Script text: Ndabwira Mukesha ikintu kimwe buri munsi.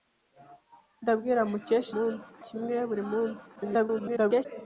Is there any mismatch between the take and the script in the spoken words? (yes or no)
yes